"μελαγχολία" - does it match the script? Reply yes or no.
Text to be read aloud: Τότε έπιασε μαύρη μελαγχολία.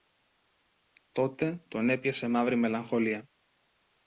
yes